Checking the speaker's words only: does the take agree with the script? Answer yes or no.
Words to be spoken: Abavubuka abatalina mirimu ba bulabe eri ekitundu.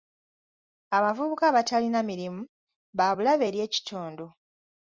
yes